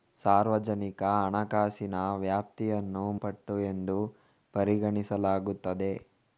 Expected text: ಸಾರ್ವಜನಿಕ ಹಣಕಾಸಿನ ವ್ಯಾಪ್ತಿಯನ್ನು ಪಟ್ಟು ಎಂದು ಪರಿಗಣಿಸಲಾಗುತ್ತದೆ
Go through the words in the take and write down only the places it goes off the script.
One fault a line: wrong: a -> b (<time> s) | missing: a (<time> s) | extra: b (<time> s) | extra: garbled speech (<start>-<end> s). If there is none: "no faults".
no faults